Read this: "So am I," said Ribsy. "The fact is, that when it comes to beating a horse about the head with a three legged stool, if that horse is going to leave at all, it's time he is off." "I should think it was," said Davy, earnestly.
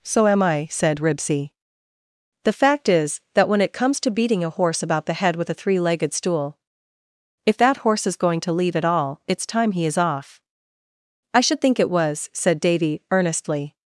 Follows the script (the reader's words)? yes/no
yes